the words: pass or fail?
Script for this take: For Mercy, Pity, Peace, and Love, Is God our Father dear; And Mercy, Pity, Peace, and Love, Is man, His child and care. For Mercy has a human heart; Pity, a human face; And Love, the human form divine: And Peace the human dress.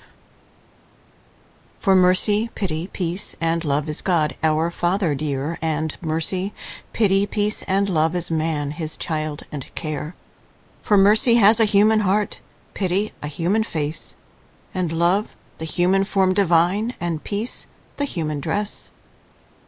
pass